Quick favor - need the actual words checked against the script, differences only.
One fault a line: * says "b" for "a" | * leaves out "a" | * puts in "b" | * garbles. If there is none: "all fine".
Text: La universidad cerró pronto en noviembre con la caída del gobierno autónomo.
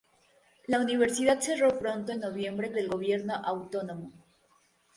* leaves out "con la caída"